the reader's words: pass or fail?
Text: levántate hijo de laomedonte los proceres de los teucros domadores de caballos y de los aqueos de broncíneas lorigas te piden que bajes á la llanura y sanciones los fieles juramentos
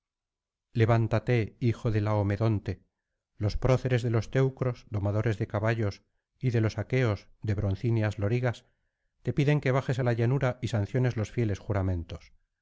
pass